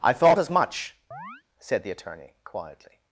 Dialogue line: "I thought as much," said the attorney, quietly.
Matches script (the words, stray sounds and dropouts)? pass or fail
fail